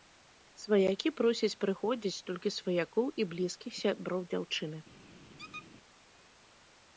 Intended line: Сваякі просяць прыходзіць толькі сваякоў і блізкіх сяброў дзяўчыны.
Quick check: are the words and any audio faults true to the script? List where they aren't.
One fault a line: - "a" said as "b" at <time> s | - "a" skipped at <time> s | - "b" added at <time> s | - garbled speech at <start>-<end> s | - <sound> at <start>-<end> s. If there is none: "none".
- squeak at 5.4-5.7 s